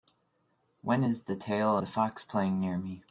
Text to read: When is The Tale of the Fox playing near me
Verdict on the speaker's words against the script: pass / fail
fail